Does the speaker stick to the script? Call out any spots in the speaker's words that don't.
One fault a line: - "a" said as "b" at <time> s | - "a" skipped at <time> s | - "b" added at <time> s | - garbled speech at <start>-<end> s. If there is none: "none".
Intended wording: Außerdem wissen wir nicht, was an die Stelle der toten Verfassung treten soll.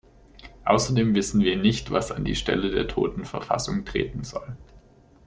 none